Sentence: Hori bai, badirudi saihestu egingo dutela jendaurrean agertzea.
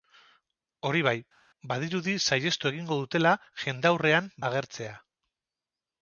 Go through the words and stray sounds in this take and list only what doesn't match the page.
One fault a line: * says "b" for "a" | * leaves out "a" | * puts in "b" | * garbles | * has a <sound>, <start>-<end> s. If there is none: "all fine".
all fine